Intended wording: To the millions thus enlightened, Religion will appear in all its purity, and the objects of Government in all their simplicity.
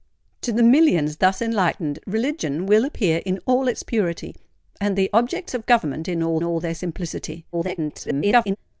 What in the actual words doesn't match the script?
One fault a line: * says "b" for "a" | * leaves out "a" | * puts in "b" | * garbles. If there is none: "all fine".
* puts in "all"
* garbles